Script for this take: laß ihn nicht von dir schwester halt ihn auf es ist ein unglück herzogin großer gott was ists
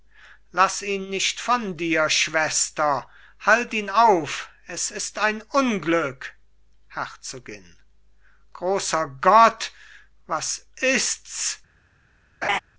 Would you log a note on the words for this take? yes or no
no